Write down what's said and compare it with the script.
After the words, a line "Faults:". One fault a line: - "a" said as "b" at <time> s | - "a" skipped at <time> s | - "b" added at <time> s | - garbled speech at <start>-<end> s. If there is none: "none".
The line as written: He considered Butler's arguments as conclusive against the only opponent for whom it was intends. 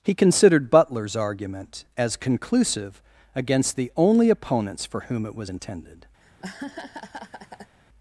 He considered Butler's argument as conclusive against the only opponents for whom it was intended.
Faults:
- "arguments" said as "argument" at 1.1 s
- "opponent" said as "opponents" at 4.3 s
- "intends" said as "intended" at 5.5 s